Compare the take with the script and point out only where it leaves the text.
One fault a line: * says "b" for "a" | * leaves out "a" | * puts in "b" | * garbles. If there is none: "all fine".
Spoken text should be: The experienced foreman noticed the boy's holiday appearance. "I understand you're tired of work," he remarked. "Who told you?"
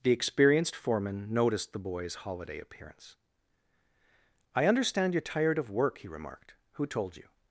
all fine